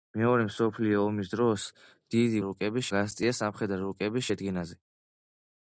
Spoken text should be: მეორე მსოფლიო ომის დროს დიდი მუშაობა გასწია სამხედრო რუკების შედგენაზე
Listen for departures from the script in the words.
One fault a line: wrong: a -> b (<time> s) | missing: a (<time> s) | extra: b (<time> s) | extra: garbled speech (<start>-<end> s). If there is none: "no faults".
wrong: მუშაობა -> რუკების (2.4 s)